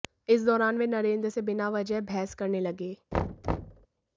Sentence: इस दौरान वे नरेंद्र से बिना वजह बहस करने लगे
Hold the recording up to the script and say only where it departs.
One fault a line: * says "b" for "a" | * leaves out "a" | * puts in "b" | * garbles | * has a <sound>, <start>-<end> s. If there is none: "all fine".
* has a thud, 3.1-3.9 s